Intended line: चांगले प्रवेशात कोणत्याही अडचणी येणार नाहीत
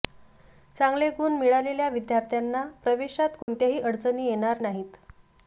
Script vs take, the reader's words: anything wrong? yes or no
yes